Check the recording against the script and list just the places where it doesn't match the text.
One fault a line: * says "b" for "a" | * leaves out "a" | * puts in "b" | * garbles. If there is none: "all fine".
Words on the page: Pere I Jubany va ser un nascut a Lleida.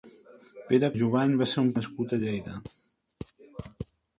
all fine